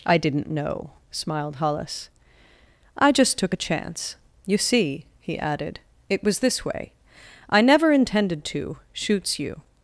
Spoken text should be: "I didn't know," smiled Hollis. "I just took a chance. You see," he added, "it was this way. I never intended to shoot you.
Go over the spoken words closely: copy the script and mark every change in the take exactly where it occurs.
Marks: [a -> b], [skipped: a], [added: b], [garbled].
"I didn't know," smiled Hollis. "I just took a chance. You see," he added, "it was this way. I never intended to [shoot -> shoots] you.